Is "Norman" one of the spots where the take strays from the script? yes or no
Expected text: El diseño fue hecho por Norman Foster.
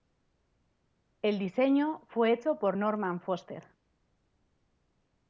no